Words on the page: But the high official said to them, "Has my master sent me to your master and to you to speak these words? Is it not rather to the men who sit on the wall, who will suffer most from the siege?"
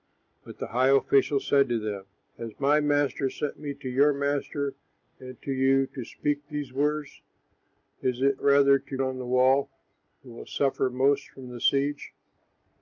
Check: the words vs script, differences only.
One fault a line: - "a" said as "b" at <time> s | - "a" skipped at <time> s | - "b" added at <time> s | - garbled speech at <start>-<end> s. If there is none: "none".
- "not" skipped at 8.4 s
- "men who sit" skipped at 9.0 s